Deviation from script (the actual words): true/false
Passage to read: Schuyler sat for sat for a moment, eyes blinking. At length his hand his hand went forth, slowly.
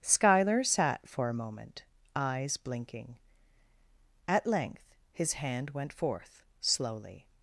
true